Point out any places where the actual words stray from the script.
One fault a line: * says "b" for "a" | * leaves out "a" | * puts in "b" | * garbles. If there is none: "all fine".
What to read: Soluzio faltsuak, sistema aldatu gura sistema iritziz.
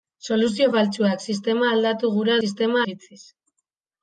all fine